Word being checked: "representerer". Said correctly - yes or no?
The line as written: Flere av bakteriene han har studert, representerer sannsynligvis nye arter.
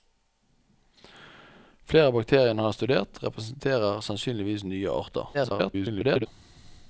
yes